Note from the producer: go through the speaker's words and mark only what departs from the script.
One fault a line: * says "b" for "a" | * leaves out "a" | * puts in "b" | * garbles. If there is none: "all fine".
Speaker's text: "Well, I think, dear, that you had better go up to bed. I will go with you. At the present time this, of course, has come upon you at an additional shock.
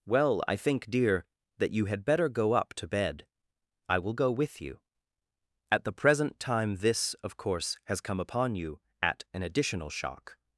all fine